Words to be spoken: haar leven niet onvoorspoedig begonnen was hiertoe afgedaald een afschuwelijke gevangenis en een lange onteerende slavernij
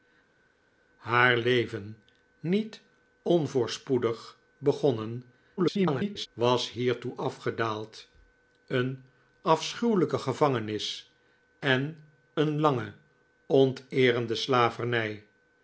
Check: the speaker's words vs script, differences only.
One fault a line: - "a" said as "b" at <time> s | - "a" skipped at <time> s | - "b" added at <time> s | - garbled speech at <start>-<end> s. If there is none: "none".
- garbled speech at 5.6-6.3 s